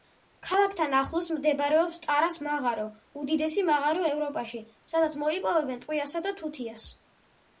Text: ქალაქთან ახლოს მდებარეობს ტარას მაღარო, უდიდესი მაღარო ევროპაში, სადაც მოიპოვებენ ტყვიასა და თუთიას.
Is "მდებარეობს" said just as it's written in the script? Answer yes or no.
yes